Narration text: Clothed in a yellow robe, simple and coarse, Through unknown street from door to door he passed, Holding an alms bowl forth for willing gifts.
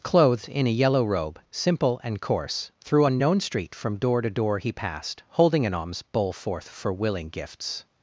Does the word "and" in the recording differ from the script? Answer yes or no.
no